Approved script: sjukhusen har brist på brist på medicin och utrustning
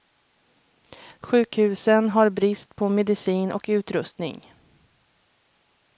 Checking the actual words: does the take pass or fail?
fail